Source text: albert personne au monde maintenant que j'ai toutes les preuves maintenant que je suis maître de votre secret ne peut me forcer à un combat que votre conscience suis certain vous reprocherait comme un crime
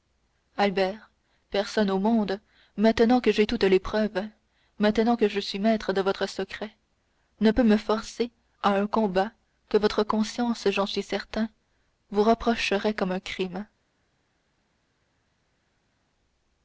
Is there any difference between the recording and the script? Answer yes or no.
yes